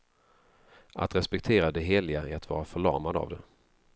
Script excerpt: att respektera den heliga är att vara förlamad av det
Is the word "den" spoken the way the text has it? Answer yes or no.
no